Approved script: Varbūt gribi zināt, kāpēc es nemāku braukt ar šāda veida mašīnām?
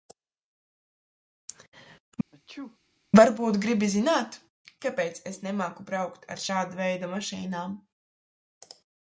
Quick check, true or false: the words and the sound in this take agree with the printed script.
false